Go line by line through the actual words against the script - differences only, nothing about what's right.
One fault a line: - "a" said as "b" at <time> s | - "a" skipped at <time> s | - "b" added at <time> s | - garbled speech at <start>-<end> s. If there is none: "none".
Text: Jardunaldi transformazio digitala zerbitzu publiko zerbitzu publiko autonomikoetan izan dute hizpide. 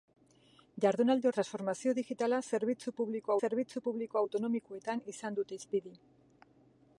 none